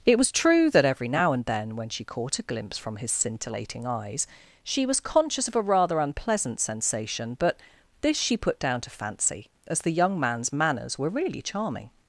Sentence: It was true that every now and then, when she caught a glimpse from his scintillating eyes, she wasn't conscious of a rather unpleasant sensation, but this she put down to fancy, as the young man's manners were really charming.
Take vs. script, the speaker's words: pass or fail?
fail